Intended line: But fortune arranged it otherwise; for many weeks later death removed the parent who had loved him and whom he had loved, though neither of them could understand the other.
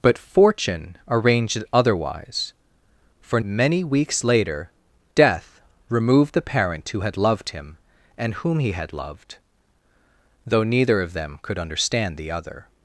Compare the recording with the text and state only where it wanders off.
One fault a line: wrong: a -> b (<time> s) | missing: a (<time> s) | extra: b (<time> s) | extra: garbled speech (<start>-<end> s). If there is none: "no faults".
no faults